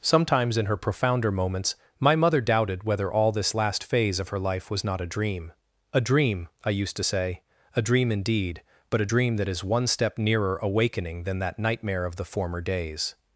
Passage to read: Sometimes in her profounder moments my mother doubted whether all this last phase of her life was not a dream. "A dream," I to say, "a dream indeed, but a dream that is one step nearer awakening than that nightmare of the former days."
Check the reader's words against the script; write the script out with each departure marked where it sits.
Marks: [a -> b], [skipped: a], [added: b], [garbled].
Sometimes in her profounder moments my mother doubted whether all this last phase of her life was not a dream. "A dream," I [added: used] to say, "a dream indeed, but a dream that is one step nearer awakening than that nightmare of the former days."